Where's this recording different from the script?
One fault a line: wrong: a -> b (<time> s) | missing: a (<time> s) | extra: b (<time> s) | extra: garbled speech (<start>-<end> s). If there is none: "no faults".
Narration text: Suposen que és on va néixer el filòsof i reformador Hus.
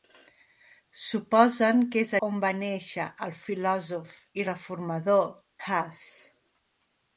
no faults